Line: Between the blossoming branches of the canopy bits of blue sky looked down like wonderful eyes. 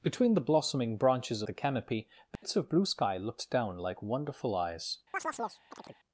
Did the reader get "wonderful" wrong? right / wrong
right